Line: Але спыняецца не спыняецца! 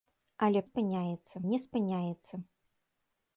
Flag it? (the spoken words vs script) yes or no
no